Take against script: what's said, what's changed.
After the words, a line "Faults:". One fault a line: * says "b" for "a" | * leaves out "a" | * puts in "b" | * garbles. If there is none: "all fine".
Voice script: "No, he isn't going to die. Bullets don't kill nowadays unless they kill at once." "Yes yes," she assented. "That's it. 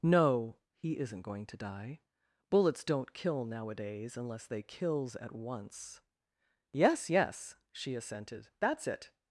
"No, he isn't going to die. Bullets don't kill nowadays unless they kills at once." "Yes yes," she assented. "That's it.
Faults:
* says "kills" for "kill"